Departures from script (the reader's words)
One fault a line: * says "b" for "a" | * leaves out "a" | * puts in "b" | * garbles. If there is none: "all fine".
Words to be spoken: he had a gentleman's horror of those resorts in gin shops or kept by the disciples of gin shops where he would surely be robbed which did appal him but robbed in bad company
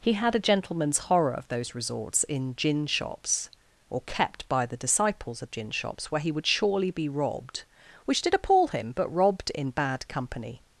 all fine